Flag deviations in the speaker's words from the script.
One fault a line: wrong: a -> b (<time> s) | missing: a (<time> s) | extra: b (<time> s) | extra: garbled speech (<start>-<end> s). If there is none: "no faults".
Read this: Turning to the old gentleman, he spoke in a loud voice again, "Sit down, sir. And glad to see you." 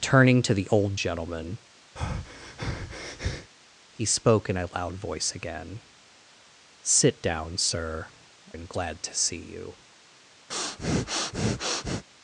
no faults